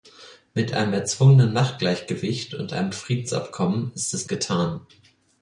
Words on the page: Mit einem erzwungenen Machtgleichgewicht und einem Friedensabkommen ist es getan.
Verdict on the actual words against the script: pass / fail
pass